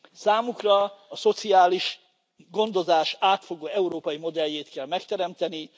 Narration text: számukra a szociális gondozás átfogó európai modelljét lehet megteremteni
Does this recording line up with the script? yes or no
no